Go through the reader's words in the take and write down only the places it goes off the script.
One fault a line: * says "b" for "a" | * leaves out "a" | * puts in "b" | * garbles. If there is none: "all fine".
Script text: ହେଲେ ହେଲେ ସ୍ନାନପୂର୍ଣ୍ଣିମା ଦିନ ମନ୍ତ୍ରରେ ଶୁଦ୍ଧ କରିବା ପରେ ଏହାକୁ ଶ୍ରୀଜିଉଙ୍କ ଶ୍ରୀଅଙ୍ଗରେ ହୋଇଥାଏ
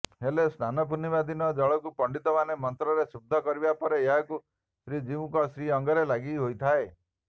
* leaves out "ହେଲେ"
* puts in "ଜଳକୁ ପଣ୍ଡିତମାନେ"
* puts in "ଲାଗି"